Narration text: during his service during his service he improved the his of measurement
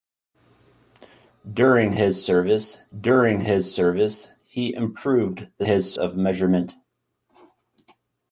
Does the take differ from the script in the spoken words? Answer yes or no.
no